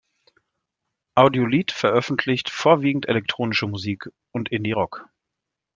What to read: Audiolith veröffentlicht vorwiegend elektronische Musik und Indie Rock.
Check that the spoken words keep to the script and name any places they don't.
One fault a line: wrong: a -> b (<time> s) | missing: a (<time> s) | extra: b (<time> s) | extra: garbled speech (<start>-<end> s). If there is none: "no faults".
no faults